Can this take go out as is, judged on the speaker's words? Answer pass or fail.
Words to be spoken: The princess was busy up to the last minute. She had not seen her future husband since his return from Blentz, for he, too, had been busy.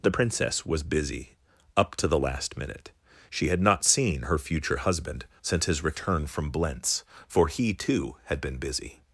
pass